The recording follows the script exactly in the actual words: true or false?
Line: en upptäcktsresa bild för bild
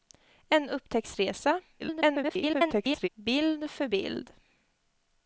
false